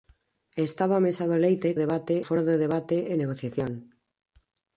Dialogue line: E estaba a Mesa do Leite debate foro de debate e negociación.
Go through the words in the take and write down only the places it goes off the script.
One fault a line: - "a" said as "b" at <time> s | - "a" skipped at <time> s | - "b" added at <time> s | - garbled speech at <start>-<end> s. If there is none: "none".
none